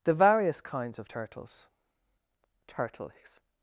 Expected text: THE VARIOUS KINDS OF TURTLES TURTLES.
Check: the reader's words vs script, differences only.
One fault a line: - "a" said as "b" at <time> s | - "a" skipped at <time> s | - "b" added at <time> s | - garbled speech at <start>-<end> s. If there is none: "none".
none